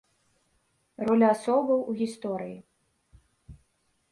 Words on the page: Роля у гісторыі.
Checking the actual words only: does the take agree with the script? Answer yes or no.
no